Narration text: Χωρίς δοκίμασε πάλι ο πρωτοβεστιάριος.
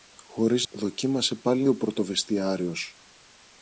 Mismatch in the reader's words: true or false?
false